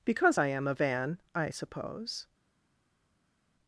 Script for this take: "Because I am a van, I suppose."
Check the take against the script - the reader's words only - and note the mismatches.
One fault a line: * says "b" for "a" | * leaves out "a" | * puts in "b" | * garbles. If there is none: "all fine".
all fine